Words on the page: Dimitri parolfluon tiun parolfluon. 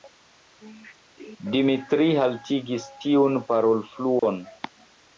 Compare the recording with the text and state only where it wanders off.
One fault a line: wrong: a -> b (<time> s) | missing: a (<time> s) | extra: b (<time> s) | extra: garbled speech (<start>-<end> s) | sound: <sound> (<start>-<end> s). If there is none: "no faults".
wrong: parolfluon -> haltigis (2.2 s)
sound: dropout (4.2-4.2 s)